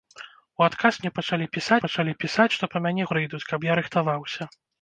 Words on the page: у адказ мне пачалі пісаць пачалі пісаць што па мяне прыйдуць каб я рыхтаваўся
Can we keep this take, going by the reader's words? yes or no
yes